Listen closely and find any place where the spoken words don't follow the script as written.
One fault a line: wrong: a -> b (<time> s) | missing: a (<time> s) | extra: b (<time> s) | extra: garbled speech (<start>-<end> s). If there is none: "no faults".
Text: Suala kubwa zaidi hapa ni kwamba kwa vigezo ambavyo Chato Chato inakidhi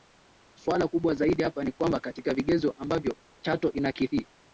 wrong: kwa -> katika (2.0 s)
missing: Chato (3.7 s)